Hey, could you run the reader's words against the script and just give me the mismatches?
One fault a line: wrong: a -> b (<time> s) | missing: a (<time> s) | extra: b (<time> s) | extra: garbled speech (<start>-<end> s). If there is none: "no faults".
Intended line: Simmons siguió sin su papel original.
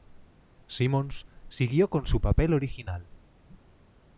wrong: sin -> con (1.9 s)